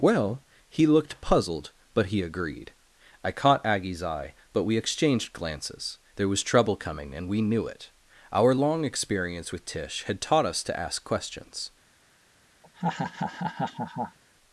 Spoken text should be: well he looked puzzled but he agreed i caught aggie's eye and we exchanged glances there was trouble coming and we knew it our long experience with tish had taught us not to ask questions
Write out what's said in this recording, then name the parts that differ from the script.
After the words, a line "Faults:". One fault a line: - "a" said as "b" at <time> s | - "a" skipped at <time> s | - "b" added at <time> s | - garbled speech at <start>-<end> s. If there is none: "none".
well he looked puzzled but he agreed i caught aggie's eye but we exchanged glances there was trouble coming and we knew it our long experience with tish had taught us to ask questions
Faults:
- "and" said as "but" at 4.5 s
- "not" skipped at 10.6 s